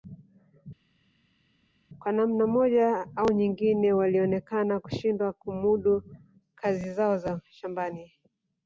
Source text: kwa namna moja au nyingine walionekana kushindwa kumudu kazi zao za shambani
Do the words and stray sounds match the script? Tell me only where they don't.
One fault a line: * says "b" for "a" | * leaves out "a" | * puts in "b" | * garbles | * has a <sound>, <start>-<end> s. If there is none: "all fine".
all fine